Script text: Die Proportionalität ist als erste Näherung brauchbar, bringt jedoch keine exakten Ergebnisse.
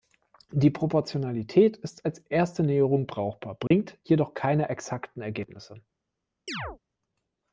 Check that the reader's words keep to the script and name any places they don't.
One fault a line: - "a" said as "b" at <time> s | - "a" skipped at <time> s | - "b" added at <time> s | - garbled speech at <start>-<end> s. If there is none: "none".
none